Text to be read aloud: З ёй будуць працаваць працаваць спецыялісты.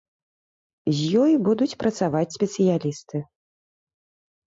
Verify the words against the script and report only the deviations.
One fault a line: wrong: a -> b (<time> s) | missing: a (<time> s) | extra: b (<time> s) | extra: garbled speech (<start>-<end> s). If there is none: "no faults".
missing: працаваць (2.4 s)